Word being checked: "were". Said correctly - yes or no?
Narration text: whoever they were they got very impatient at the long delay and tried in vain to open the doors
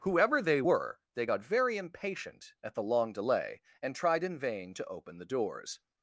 yes